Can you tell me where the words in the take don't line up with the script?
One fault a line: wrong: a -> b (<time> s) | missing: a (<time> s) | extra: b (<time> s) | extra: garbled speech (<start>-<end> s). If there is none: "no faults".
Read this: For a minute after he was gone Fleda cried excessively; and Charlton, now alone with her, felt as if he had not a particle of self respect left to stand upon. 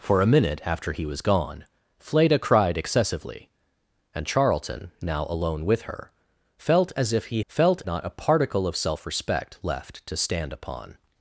wrong: had -> felt (7.5 s)